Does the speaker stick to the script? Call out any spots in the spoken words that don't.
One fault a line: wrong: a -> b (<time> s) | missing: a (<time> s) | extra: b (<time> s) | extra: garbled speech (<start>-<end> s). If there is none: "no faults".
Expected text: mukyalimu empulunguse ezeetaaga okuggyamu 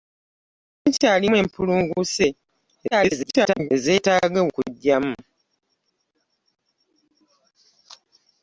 extra: garbled speech (2.9-3.7 s)